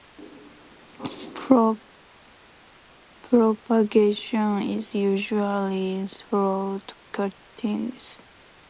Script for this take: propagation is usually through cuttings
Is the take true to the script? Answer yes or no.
yes